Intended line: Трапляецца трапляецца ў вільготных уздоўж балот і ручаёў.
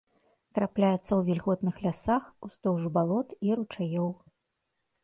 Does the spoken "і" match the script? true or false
true